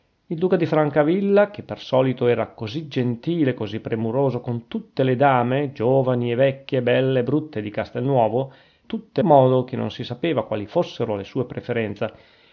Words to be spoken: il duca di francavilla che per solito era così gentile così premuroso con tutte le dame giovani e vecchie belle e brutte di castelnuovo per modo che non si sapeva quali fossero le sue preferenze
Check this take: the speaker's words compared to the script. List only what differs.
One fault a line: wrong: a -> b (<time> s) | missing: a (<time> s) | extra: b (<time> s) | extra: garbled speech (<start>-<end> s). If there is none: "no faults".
wrong: per -> tutte (8.9 s)